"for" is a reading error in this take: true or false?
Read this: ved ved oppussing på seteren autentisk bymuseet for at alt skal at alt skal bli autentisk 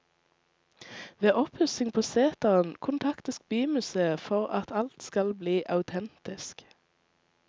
false